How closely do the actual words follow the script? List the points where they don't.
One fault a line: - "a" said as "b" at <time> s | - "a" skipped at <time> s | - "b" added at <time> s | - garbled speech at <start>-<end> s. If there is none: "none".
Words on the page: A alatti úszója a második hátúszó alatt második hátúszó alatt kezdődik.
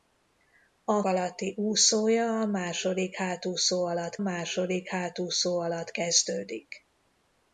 none